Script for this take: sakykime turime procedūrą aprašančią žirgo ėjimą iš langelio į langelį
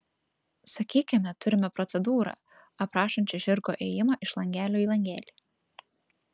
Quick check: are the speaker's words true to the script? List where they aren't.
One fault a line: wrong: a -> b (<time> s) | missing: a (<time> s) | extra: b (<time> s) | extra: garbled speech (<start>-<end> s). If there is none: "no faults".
no faults